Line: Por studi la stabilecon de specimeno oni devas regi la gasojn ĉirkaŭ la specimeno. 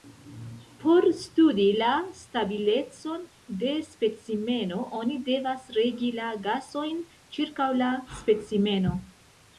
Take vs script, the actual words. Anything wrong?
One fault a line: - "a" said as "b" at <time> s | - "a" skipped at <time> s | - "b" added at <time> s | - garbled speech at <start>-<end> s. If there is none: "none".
none